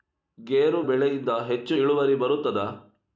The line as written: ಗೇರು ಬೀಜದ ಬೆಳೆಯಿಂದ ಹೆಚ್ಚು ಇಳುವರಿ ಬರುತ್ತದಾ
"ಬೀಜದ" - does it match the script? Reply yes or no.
no